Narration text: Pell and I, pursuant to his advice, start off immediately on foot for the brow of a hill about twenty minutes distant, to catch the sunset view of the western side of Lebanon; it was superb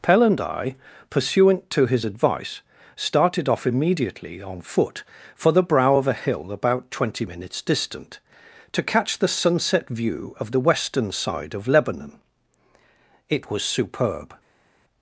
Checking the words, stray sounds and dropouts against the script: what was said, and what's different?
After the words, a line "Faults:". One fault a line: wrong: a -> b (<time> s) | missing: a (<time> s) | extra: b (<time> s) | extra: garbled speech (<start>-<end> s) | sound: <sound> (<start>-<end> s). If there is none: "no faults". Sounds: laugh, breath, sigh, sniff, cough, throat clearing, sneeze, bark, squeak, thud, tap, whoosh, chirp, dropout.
Pell and I, pursuant to his advice, started off immediately on foot for the brow of a hill about twenty minutes distant, to catch the sunset view of the western side of Lebanon; it was superb
Faults:
wrong: start -> started (3.0 s)